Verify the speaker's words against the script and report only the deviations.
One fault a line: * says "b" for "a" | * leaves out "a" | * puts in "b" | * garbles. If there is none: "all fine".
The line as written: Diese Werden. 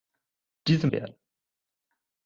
all fine